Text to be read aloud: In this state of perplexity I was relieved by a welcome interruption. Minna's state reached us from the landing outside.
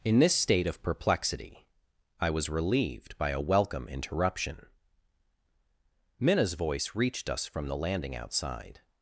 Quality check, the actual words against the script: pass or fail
fail